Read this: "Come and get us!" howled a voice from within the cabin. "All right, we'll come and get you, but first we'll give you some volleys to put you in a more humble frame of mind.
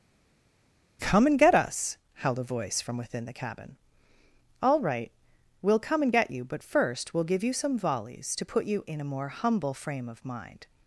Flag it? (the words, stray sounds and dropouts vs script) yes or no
no